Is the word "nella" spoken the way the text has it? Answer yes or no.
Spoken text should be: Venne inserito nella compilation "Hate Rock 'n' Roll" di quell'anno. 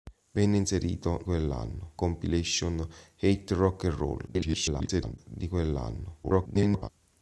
no